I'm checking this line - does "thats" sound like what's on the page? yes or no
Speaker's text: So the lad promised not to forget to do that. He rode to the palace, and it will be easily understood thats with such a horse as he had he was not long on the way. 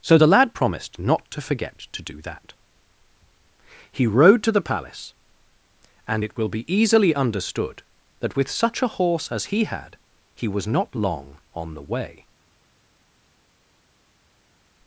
no